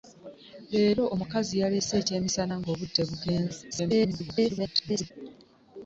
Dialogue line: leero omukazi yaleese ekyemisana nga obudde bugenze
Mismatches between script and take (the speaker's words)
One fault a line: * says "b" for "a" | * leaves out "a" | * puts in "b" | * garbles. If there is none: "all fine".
* garbles